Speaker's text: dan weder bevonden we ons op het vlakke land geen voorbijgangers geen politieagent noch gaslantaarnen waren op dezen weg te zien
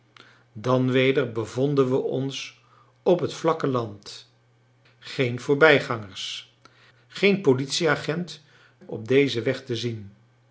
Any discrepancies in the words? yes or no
yes